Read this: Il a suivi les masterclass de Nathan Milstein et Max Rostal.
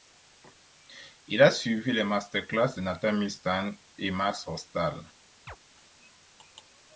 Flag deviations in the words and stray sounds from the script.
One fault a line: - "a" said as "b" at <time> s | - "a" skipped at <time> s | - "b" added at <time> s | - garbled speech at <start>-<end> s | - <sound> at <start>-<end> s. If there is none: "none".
- chirp at 5.5-5.6 s